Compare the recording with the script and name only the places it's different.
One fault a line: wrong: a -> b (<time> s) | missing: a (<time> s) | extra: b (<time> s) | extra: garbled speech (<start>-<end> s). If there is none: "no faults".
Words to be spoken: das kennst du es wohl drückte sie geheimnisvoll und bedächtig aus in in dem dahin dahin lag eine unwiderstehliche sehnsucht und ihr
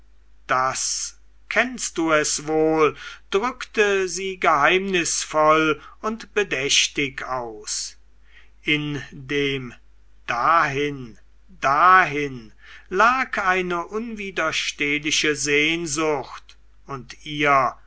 missing: in (9.0 s)